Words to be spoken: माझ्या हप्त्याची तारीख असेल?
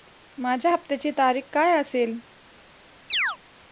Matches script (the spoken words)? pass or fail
fail